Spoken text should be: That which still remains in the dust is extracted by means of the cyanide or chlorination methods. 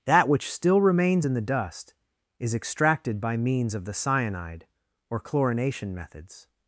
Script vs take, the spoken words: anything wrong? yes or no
no